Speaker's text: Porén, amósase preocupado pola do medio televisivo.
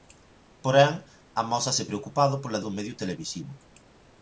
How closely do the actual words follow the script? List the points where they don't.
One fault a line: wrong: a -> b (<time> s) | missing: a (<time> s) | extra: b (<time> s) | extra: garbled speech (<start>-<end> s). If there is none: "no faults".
no faults